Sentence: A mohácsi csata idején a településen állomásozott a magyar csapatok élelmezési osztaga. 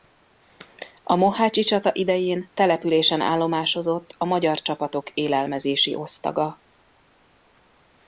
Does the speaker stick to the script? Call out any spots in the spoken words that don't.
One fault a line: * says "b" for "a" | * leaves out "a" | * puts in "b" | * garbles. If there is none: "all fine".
* leaves out "a"